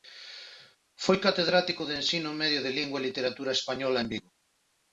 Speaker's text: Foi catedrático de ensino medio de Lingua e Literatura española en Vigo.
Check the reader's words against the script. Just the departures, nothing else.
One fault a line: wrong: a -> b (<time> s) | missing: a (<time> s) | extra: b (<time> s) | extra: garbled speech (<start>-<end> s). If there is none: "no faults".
no faults